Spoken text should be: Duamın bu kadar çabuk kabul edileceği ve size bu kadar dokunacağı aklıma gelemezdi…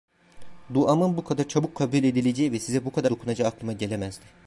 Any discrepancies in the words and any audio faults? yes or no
no